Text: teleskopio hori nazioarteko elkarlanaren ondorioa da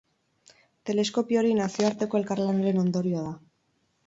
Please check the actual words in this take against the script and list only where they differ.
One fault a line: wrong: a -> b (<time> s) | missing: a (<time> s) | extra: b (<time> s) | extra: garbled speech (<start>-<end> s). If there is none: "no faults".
no faults